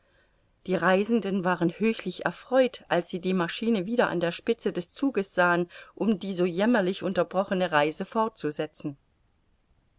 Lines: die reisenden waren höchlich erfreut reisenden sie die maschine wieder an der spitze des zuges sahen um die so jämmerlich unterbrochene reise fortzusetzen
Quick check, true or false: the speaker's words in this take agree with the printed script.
false